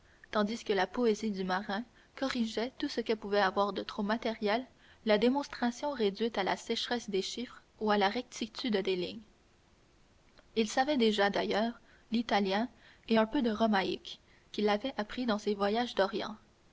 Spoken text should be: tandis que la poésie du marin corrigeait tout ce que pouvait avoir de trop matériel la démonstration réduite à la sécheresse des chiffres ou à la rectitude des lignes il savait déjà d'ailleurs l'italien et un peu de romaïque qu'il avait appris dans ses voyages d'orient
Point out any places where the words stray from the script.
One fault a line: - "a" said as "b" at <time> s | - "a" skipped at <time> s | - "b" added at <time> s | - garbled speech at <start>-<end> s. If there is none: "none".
none